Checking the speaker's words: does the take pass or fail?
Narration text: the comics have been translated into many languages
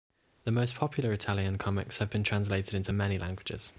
fail